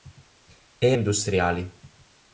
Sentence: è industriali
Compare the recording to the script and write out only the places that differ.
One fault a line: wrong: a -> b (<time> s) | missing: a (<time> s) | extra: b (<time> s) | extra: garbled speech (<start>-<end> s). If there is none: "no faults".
no faults